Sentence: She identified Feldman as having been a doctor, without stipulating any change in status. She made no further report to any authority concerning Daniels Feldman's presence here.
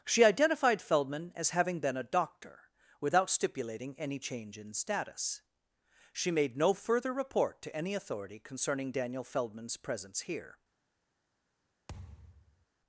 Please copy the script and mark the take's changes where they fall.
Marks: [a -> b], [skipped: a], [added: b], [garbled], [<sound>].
She identified Feldman as having been a doctor, without stipulating any change in status. She made no further report to any authority concerning [Daniels -> Daniel] Feldman's presence here. [thud]